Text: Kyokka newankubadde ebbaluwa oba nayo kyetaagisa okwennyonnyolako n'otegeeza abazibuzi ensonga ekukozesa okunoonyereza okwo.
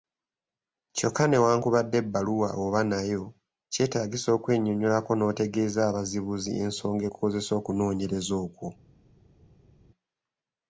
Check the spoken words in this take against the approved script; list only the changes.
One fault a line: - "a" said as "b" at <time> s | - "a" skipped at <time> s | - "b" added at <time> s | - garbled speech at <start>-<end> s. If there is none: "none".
none